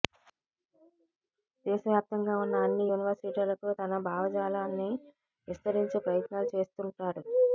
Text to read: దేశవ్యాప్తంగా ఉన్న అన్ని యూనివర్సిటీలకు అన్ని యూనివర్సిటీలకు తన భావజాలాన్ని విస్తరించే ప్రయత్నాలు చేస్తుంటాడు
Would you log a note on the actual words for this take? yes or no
yes